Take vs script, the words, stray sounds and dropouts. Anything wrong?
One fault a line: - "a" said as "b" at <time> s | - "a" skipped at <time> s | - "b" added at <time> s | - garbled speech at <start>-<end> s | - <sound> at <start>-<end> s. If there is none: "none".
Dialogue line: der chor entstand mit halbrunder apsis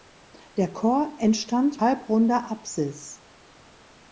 - "mit" skipped at 1.8 s